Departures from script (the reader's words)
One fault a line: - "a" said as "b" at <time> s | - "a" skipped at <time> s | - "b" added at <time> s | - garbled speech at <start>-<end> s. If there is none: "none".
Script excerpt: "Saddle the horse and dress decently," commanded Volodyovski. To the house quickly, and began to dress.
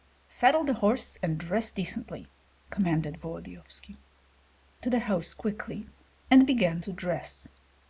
none